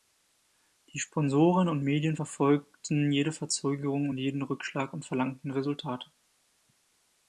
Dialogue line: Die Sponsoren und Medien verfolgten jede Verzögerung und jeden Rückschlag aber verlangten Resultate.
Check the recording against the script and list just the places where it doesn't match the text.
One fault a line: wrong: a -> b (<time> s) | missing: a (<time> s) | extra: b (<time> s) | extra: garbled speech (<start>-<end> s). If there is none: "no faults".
wrong: aber -> und (4.9 s)